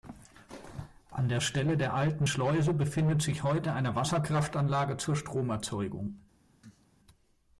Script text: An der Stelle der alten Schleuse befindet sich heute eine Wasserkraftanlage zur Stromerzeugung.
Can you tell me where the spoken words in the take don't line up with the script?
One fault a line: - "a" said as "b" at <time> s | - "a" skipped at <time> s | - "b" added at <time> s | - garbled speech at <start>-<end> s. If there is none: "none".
none